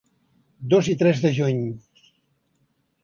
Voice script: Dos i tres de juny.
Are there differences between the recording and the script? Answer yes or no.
no